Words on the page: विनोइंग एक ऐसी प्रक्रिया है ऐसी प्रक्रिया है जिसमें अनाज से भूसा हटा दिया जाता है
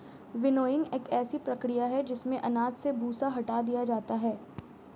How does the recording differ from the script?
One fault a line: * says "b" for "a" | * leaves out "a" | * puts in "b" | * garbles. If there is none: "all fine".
* leaves out "ऐसी प्रक्रिया है"